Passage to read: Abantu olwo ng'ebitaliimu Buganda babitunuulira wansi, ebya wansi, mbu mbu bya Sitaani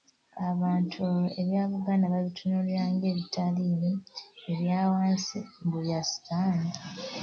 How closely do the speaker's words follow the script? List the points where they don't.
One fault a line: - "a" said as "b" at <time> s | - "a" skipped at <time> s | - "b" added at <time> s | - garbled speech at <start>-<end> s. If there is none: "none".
- "ng'ebitaliimu" said as "ebya" at 1.4 s
- "wansi" said as "ng'ebitaliimu" at 2.9 s
- "mbu" skipped at 5.8 s